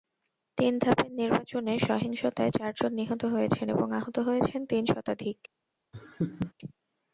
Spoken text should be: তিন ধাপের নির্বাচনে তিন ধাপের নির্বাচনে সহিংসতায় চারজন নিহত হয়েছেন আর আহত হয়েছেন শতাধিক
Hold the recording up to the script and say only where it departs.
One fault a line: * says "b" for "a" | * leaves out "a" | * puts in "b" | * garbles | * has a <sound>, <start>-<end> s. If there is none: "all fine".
* leaves out "তিন ধাপের নির্বাচনে"
* says "এবং" for "আর"
* puts in "তিন"
* has a laugh, 5.9-6.5 s